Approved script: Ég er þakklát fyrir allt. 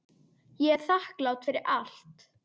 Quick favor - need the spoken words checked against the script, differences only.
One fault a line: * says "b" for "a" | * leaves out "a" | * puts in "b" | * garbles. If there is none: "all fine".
all fine